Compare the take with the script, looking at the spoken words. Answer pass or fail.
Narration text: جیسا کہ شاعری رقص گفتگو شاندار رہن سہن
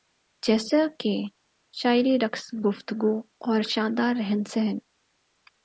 fail